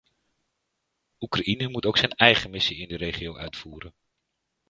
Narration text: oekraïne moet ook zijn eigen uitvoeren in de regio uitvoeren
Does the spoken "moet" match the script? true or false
true